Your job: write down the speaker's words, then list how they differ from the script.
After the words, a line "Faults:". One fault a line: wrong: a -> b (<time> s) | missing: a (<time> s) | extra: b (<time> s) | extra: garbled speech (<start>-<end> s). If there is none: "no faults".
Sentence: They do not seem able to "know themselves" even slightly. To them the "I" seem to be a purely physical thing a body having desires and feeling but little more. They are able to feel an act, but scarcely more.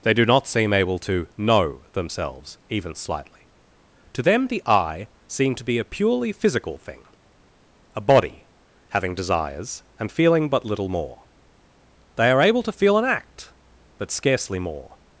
They do not seem able to "know themselves" even slightly. To them the "I" seem to be a purely physical thing a body having desires and feeling but little more. They are able to feel an act, but scarcely more.
Faults:
no faults